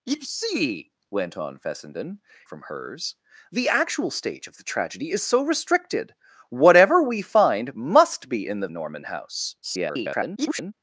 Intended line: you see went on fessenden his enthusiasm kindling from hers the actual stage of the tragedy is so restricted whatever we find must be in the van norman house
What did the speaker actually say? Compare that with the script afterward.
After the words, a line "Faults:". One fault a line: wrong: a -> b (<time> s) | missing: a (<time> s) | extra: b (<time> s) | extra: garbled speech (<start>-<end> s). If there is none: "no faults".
you see went on fessenden from hers the actual stage of the tragedy is so restricted whatever we find must be in the norman house [garbled]
Faults:
missing: his enthusiasm kindling (2.2 s)
missing: van (8.7 s)
extra: garbled speech (9.6-10.7 s)